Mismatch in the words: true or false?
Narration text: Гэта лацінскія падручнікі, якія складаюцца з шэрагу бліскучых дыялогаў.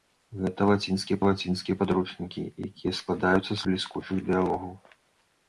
true